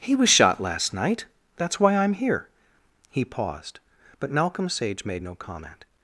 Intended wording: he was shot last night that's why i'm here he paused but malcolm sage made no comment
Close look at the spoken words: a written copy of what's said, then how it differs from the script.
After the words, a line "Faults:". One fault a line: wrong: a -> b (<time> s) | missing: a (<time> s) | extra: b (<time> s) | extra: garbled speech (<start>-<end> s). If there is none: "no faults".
he was shot last night that's why i'm here he paused but malcolm sage made no comment
Faults:
no faults